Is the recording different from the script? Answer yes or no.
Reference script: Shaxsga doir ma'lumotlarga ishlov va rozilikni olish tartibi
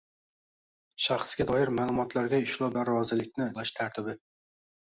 no